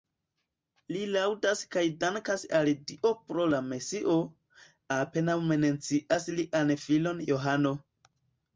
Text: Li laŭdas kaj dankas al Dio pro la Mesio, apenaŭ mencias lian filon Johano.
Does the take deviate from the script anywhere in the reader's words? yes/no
no